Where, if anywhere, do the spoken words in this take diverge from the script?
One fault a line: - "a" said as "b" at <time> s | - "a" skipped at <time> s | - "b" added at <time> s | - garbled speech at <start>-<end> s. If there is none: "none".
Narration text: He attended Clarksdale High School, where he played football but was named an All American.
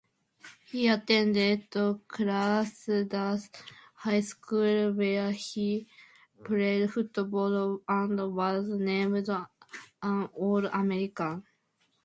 - "but" said as "and" at 7.9 s